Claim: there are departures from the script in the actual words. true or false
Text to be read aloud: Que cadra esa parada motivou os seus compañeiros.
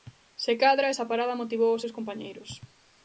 true